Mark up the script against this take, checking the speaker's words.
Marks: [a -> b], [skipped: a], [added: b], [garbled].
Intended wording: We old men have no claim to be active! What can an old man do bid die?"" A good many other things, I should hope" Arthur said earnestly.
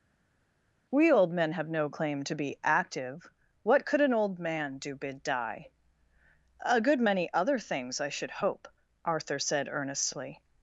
We old men have no claim to be active! What [can -> could] an old man do bid die?"" A good many other things, I should hope" Arthur said earnestly.